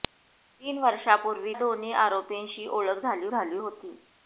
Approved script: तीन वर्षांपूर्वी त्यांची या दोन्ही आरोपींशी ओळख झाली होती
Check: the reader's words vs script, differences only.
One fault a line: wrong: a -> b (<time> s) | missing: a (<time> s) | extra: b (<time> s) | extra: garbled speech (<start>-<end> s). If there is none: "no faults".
missing: त्यांची या (1.5 s)
extra: झाली (3.3 s)